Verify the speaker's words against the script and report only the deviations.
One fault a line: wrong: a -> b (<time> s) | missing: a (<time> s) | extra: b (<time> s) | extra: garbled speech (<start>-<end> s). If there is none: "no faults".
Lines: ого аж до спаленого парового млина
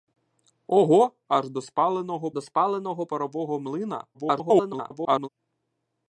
extra: до спаленого (2.3 s)
extra: garbled speech (4.1-5.3 s)